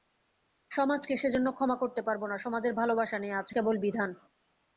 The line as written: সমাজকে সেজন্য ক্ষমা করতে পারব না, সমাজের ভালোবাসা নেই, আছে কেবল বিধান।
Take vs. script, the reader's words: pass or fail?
pass